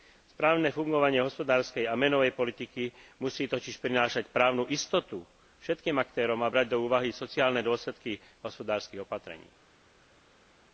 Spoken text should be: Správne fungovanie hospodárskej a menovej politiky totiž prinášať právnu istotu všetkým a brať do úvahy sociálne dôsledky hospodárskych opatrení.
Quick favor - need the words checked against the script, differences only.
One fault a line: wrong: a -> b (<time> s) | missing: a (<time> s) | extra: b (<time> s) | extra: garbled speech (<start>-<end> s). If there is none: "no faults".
extra: musí (3.2 s)
extra: aktérom (6.0 s)